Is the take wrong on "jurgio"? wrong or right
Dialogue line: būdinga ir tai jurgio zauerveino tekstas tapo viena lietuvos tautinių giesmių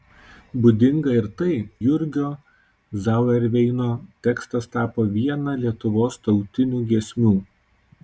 right